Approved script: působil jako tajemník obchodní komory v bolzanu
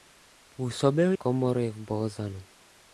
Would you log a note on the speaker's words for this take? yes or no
yes